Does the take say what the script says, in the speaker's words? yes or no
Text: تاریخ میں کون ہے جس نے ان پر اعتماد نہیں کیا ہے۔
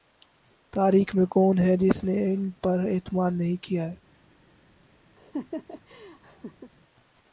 yes